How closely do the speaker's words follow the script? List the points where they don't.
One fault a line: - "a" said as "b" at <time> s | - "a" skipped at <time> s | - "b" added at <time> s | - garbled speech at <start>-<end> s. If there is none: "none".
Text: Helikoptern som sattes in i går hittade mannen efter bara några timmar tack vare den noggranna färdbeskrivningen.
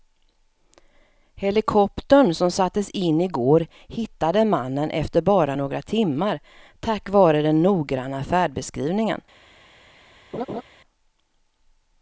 none